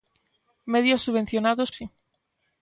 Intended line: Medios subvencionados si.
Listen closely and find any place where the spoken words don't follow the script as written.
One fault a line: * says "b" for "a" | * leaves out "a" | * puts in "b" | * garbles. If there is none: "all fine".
all fine